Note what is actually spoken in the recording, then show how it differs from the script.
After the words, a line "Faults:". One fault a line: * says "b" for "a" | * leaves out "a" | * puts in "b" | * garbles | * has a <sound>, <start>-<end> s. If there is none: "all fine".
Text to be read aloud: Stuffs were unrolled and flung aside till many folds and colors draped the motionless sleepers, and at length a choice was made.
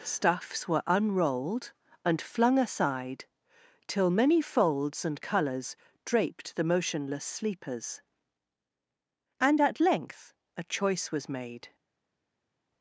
Stuffs were unrolled and flung aside till many folds and colors draped the motionless sleepers, and at length a choice was made.
Faults:
all fine